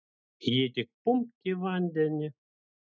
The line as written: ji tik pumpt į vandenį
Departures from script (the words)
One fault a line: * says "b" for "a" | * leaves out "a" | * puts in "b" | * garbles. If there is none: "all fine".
all fine